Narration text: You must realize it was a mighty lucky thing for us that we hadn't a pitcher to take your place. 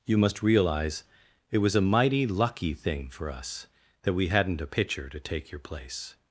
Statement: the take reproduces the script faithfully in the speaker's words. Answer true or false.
true